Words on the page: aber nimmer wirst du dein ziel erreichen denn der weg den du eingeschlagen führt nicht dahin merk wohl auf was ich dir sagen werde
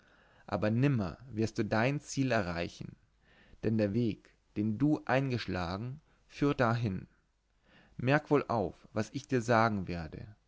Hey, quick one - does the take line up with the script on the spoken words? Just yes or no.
no